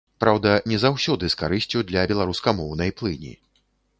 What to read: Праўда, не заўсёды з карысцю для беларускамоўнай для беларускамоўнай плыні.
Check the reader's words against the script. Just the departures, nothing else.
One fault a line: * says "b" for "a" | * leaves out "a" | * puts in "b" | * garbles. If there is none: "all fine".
* leaves out "для беларускамоўнай"